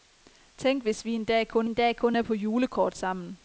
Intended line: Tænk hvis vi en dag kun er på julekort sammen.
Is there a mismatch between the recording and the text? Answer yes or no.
yes